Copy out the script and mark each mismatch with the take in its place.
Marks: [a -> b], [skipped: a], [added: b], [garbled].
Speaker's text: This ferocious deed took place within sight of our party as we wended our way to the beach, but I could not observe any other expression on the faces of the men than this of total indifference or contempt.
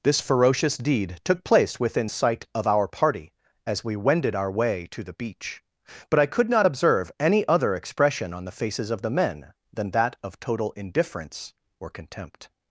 This ferocious deed took place within sight of our party as we wended our way to the beach, but I could not observe any other expression on the faces of the men than [this -> that] of total indifference or contempt.